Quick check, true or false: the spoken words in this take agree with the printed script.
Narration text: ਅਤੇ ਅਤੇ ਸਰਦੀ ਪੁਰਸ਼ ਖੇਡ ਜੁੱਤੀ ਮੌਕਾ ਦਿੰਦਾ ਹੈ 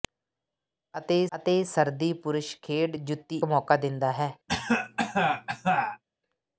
true